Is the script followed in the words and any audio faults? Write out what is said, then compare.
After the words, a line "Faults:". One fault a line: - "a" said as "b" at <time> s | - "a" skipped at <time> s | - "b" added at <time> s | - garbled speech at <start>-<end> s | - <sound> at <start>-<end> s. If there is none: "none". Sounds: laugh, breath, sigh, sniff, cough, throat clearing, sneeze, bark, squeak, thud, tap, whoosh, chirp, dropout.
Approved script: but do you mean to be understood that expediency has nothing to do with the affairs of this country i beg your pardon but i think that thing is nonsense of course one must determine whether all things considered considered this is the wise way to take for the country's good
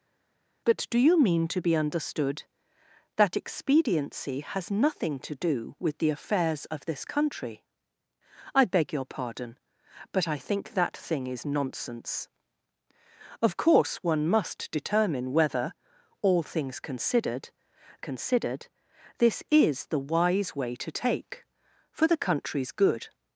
but do you mean to be understood that expediency has nothing to do with the affairs of this country i beg your pardon but i think that thing is nonsense of course one must determine whether all things considered considered this is the wise way to take for the country's good
Faults:
none